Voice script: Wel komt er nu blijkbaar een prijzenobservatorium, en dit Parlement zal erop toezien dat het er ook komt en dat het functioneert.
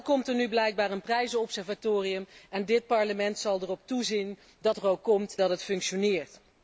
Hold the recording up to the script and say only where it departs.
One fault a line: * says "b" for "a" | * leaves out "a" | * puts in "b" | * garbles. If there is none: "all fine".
* leaves out "het"
* leaves out "en"